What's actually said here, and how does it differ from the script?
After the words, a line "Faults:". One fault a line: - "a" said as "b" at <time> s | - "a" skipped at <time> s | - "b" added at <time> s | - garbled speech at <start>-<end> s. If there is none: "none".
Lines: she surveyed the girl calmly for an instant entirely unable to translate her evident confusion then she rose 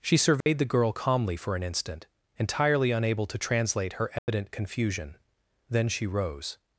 she surveyed the girl calmly for an instant entirely unable to translate her evident confusion then she rose
Faults:
none